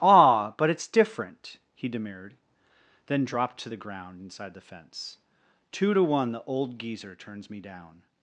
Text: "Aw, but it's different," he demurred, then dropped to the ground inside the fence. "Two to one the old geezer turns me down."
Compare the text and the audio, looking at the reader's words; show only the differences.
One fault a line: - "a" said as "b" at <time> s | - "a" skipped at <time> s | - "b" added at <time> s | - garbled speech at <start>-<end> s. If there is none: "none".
none